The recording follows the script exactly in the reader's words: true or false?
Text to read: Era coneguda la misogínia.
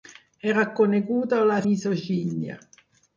true